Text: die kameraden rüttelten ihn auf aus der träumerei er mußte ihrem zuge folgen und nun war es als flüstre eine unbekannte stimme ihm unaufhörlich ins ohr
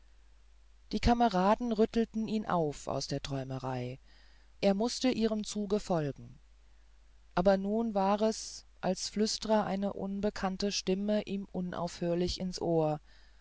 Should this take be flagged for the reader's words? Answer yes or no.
yes